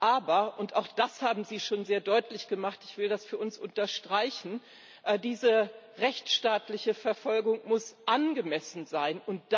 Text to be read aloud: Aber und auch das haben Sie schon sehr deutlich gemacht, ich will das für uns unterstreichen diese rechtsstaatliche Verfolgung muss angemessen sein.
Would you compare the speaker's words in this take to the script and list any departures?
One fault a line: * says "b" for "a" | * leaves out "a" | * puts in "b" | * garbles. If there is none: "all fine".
all fine